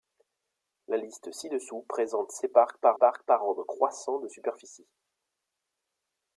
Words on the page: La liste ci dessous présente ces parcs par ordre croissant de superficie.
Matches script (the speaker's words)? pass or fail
fail